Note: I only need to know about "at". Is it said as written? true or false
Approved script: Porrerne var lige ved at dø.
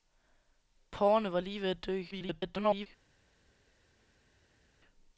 true